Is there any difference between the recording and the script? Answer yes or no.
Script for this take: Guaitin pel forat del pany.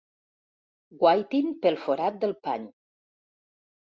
no